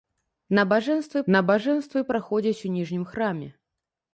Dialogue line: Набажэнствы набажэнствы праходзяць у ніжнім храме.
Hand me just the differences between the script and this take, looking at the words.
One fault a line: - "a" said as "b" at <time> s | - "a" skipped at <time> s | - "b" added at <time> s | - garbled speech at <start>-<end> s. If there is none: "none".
none